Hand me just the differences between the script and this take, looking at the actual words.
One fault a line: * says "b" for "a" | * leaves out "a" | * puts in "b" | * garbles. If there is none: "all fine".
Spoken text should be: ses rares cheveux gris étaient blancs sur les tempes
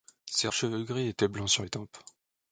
* leaves out "rares"